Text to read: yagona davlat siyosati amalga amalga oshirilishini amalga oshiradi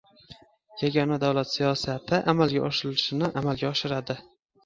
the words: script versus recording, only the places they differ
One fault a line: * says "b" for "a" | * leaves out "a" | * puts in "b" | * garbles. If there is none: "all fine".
* leaves out "amalga"